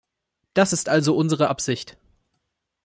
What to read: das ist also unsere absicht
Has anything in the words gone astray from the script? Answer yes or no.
no